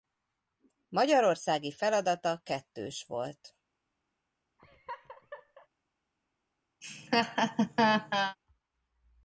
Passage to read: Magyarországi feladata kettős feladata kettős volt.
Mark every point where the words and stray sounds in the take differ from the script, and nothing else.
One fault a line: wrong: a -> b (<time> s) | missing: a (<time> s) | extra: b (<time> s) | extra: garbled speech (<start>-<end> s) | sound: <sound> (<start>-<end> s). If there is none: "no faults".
missing: feladata kettős (3.0 s)
sound: laugh (4.6-5.7 s)
sound: laugh (6.8-8.4 s)